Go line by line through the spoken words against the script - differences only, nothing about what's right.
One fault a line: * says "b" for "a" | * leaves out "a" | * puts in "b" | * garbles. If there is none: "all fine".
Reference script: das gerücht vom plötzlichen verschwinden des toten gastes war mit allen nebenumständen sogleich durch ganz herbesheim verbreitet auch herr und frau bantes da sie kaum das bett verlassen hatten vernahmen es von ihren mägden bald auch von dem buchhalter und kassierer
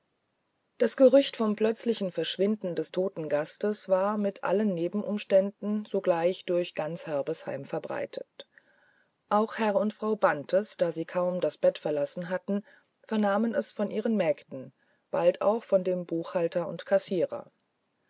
all fine